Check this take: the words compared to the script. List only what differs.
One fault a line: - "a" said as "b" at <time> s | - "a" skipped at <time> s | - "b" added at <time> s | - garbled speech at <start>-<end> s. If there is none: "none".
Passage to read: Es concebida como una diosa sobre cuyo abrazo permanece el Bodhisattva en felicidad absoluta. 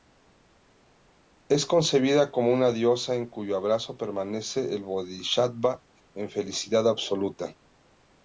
- "sobre" said as "en" at 3.1 s